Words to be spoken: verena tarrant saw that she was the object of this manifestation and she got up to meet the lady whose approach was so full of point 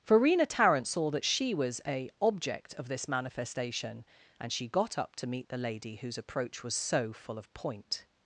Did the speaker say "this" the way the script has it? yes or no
yes